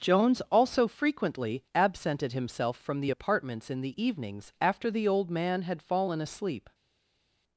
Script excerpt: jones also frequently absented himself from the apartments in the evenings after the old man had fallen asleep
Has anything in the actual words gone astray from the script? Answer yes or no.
no